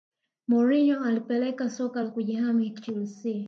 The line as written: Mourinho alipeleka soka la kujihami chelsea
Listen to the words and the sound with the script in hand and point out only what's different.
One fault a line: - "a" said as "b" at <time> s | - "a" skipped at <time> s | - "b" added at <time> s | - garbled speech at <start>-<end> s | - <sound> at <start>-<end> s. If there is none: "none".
none